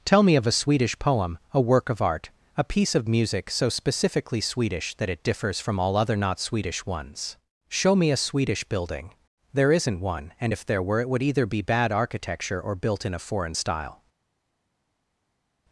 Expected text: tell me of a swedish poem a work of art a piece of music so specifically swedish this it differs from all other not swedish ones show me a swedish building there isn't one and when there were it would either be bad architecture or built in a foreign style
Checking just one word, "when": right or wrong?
wrong